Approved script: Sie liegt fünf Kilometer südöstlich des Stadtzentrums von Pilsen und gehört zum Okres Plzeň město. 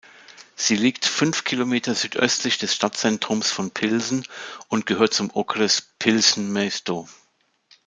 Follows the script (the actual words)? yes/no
yes